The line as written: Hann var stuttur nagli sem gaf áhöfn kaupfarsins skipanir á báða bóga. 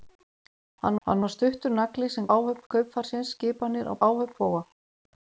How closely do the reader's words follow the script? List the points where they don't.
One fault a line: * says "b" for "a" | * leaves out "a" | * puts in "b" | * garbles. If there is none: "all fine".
* puts in "hann"
* leaves out "gaf"
* says "áhöfn" for "báða"